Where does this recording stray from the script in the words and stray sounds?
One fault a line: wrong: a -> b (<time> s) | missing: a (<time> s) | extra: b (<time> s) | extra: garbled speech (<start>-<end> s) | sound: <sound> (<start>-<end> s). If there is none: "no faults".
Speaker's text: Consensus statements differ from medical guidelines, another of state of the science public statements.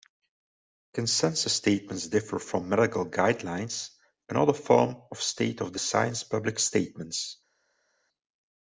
extra: form (4.5 s)